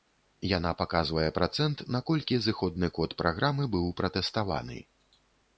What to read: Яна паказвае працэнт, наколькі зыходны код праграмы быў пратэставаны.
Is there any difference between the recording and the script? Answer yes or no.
no